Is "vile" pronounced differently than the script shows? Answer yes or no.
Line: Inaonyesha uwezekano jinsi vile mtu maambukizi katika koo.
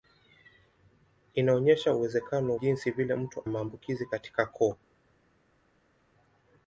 no